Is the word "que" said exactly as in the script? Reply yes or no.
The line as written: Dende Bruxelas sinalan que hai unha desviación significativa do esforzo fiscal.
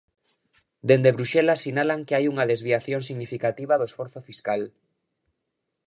yes